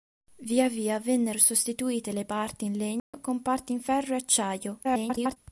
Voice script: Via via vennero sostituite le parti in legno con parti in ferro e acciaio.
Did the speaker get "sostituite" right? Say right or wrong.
right